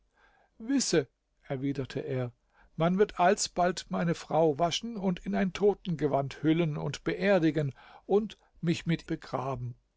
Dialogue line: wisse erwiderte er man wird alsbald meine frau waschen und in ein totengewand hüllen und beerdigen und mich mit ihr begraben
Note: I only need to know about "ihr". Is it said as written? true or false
false